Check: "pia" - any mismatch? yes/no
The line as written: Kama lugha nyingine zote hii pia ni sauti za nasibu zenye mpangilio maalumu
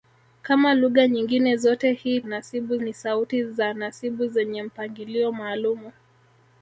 yes